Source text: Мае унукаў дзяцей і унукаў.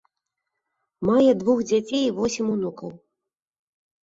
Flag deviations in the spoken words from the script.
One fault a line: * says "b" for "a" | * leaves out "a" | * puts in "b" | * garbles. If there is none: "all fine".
* says "двух" for "унукаў"
* puts in "восем"